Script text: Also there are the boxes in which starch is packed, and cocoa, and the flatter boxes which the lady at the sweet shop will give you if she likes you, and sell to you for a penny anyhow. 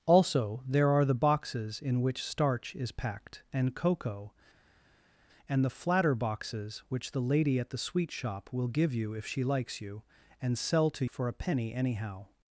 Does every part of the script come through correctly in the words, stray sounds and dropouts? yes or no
no